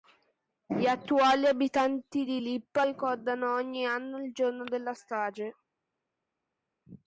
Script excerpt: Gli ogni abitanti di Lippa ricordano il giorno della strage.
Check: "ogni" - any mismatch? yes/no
yes